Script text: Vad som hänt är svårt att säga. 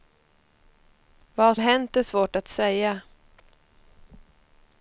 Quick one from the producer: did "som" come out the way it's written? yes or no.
no